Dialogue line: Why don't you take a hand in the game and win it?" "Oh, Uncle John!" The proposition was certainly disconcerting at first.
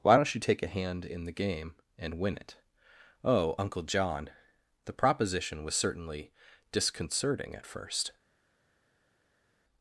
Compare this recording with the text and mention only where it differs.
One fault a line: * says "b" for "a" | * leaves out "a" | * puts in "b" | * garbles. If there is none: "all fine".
all fine